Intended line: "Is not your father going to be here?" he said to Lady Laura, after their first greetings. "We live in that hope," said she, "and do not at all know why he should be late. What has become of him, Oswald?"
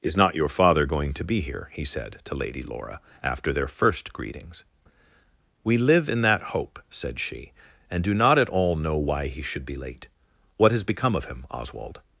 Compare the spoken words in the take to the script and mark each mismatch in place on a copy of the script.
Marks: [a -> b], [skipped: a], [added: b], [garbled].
"Is not your father going to be here?" he said to Lady Laura, after their first greetings. "We live in that hope," said she, "and do not at all know why he should be late. What has become of him, Oswald?"